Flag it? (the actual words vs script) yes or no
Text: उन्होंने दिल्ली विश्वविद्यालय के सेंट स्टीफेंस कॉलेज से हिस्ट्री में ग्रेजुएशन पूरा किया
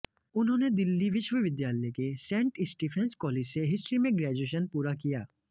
no